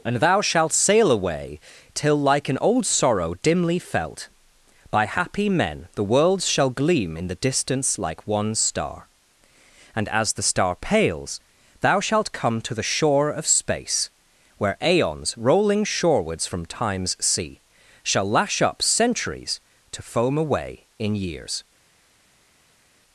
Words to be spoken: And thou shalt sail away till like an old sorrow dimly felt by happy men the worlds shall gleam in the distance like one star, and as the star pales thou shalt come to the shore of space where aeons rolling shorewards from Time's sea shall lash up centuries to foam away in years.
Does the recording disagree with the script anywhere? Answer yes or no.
no